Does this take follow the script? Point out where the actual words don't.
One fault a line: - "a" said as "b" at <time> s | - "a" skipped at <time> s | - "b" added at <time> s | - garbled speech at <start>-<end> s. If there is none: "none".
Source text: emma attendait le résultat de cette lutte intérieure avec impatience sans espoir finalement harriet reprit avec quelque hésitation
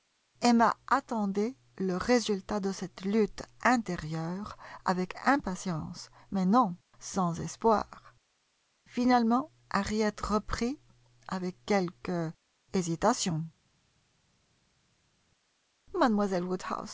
- "mais non" added at 6.3 s